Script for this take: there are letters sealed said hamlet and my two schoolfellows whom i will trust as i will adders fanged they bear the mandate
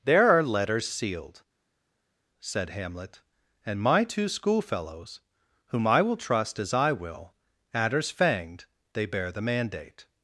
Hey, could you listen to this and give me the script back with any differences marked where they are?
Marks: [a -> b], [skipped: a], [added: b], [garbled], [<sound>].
there are letters sealed said hamlet and my two schoolfellows whom i will trust as i will adders fanged they bear the mandate